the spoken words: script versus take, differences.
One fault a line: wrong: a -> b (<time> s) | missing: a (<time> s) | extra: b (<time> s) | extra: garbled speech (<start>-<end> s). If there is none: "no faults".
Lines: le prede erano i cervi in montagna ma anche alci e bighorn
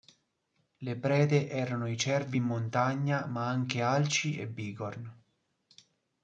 no faults